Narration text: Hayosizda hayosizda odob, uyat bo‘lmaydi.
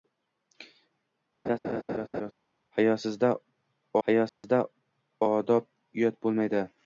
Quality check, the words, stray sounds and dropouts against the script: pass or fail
fail